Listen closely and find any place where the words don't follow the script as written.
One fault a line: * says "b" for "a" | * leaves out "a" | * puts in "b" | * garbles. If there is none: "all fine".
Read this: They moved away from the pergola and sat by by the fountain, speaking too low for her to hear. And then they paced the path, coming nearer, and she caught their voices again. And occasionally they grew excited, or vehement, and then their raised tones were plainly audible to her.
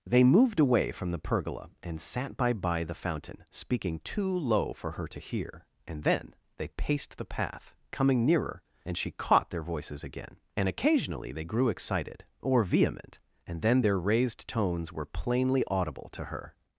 all fine